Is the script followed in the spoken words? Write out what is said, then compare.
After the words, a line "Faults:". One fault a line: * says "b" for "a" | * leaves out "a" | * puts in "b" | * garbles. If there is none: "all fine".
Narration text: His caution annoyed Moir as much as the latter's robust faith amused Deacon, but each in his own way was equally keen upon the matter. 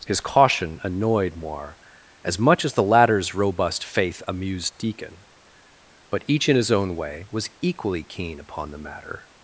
His caution annoyed Moir as much as the latter's robust faith amused Deacon, but each in his own way was equally keen upon the matter.
Faults:
all fine